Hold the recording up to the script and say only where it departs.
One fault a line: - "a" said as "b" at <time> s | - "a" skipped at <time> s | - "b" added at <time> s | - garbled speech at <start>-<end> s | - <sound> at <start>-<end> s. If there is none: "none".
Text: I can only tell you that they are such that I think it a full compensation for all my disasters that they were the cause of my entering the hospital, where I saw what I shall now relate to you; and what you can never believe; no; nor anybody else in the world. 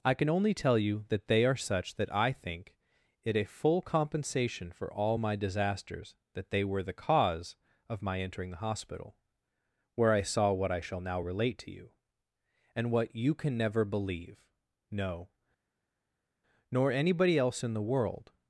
none